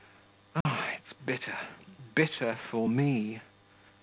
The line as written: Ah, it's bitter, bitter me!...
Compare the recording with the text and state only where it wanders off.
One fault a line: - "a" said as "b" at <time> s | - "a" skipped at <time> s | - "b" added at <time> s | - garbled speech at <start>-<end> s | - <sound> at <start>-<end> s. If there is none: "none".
- dropout at 0.6-0.7 s
- "for" added at 2.7 s